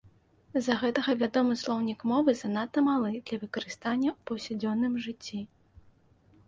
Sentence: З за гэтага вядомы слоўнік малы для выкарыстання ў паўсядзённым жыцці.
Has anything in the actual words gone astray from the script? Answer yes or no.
yes